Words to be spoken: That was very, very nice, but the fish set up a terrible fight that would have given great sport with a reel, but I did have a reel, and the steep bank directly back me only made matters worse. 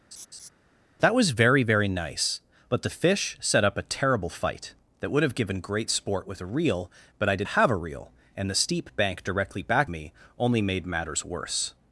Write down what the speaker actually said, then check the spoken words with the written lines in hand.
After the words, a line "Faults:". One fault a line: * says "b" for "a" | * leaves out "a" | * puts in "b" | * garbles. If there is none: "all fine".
That was very, very nice, but the fish set up a terrible fight that would have given great sport with a reel, but I did have a reel, and the steep bank directly back me only made matters worse.
Faults:
all fine